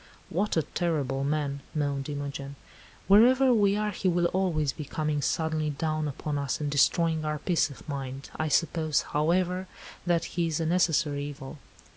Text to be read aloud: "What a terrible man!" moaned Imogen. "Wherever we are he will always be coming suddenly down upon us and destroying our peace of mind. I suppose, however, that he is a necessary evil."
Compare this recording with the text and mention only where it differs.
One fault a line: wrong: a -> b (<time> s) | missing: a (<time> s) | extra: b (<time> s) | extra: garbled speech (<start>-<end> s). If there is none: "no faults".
no faults